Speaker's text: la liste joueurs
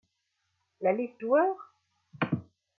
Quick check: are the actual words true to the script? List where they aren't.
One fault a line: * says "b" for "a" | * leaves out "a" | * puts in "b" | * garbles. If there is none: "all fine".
all fine